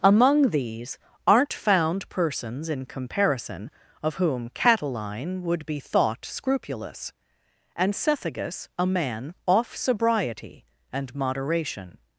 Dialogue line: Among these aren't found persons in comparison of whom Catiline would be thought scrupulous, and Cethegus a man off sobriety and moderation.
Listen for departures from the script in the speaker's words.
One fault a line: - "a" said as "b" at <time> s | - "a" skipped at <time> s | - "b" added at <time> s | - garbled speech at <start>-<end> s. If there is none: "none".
none